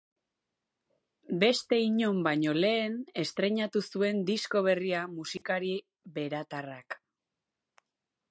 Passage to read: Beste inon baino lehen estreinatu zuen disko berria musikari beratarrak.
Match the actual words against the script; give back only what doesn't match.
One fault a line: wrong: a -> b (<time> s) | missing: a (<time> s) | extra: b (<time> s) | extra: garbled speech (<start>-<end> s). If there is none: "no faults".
no faults